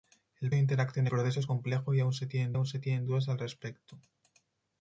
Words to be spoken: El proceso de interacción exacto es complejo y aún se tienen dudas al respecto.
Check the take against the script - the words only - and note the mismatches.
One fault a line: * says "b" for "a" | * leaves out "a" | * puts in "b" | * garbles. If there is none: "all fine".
* leaves out "proceso"
* says "proceso" for "exacto"
* puts in "aún se tienen"